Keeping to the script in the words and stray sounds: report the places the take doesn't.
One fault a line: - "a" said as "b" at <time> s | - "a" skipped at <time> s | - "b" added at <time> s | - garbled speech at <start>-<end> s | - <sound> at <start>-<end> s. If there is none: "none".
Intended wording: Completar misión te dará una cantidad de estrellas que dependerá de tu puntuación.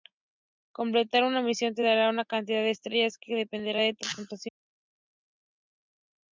- "una" added at 1.2 s